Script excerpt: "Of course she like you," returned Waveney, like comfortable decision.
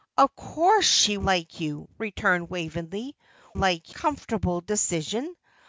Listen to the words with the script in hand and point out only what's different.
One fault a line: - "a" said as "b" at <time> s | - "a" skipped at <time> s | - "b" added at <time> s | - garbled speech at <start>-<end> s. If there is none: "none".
none